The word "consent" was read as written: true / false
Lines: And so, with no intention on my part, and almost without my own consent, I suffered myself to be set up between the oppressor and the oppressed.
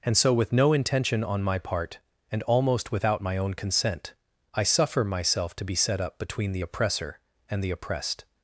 true